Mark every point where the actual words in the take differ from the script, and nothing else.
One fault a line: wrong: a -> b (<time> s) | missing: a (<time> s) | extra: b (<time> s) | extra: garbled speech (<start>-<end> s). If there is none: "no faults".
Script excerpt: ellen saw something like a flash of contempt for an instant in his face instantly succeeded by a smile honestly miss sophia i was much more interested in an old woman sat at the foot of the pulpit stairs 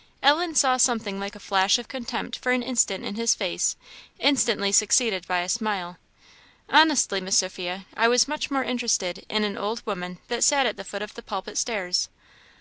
extra: that (10.3 s)